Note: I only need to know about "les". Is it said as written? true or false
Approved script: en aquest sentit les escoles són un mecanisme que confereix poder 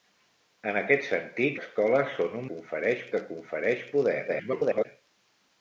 false